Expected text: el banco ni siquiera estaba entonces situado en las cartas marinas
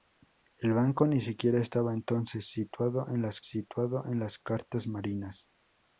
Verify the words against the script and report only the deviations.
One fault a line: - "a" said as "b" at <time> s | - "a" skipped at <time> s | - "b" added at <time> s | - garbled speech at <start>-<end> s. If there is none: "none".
- "situado en las" added at 3.4 s